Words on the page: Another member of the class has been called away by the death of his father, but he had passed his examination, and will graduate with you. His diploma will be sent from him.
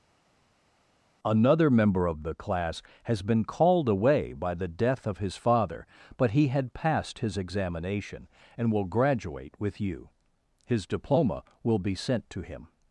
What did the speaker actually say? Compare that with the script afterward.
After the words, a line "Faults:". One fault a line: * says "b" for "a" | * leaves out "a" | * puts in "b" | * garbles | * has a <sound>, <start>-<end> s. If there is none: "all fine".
Another member of the class has been called away by the death of his father, but he had passed his examination, and will graduate with you. His diploma will be sent to him.
Faults:
* says "to" for "from"